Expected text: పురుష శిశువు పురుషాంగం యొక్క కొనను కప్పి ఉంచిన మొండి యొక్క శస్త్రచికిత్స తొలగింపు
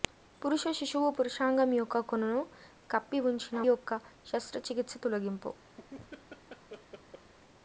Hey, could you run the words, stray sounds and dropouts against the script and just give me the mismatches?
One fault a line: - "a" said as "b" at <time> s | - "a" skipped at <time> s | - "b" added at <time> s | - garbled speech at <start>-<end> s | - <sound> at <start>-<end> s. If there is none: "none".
- "మొండి" skipped at 3.6 s
- laugh at 5.8-7.3 s